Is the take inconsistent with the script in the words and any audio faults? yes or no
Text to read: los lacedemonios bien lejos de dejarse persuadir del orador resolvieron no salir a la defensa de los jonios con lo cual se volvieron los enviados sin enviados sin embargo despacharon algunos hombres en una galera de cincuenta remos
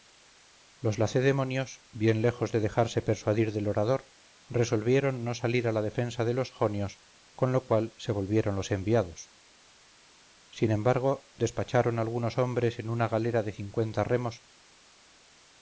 yes